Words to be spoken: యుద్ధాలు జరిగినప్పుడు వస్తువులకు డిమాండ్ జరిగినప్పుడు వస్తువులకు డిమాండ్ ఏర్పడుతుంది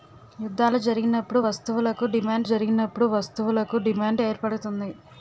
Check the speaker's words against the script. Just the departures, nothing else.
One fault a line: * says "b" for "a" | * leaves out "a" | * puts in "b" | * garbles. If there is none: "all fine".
all fine